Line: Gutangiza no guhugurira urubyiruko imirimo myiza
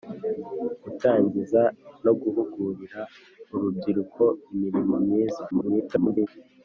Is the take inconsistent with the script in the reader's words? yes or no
yes